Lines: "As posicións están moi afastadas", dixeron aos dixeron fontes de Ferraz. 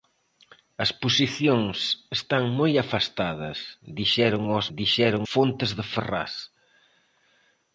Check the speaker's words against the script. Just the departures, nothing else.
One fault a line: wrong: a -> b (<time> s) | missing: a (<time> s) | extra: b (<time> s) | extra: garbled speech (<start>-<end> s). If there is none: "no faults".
no faults